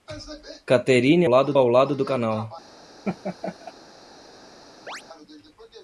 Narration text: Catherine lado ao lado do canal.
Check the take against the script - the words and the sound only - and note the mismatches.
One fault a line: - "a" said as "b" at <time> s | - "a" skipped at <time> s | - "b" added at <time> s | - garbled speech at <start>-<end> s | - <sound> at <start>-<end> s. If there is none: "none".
- laugh at 3.0-3.7 s
- chirp at 4.9-5.0 s